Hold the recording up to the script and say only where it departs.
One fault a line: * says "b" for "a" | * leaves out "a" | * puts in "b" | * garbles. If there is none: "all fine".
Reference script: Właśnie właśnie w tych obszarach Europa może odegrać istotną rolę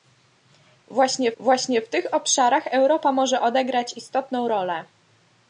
all fine